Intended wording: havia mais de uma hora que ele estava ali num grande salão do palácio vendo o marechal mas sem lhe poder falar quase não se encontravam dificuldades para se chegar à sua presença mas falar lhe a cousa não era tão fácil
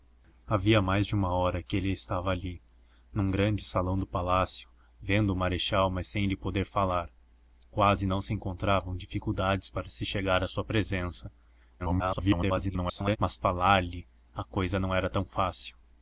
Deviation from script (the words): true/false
true